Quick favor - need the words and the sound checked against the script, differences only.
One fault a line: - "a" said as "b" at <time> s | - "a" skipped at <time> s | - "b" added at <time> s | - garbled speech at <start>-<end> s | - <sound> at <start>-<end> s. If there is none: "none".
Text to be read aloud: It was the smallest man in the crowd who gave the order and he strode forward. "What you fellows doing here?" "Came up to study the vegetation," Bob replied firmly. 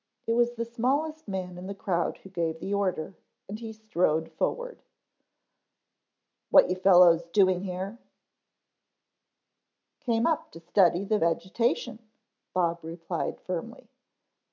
none